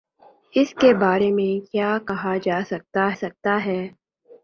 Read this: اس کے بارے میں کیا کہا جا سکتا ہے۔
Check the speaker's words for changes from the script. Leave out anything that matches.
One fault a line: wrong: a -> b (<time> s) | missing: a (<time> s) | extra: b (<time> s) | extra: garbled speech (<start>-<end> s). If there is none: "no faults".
extra: سکتا (3.2 s)